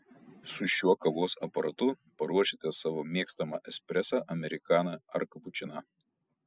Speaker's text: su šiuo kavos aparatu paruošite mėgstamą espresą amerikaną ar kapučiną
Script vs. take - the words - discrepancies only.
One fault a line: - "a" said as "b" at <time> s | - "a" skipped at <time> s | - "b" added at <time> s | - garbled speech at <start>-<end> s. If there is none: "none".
- "savo" added at 2.8 s